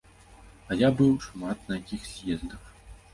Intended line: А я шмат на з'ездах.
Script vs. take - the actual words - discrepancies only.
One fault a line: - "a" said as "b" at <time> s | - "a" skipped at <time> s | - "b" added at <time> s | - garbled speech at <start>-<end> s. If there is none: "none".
- "быў" added at 1.0 s
- "якіх" added at 1.8 s